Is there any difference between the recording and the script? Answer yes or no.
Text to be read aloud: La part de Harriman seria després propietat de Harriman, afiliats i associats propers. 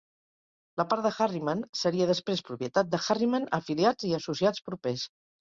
no